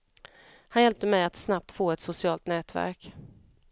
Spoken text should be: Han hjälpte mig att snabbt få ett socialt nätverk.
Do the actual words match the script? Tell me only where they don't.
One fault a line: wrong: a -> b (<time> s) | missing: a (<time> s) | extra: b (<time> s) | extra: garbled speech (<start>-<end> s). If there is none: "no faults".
no faults